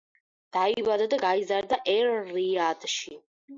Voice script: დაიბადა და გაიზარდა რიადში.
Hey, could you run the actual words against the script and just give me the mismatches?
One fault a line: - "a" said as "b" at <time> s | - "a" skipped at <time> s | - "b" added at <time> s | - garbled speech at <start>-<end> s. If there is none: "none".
- "ერ" added at 2.0 s